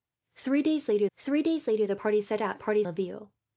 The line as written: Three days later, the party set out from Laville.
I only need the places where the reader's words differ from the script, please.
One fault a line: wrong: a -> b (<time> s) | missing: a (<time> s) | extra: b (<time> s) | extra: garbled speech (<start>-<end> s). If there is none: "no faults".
extra: three days later (1.2 s)
wrong: from -> party (2.6 s)